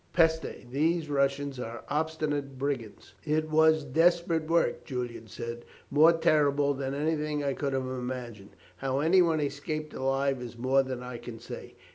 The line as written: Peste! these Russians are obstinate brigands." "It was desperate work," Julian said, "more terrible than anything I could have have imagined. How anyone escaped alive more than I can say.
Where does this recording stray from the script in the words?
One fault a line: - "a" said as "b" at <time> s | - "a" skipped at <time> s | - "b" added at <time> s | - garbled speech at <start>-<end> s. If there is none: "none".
- "have" skipped at 7.9 s
- "is" added at 10.4 s